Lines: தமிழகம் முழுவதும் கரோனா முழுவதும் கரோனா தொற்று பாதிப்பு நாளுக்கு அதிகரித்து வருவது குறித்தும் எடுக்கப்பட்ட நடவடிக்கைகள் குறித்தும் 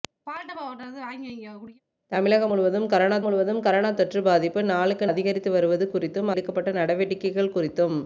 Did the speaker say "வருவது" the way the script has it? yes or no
yes